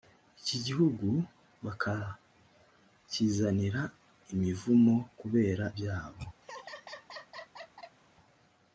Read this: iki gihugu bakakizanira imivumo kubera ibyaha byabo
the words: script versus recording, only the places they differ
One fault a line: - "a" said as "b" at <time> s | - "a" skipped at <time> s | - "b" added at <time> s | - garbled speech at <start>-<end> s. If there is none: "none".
- "ibyaha" skipped at 5.7 s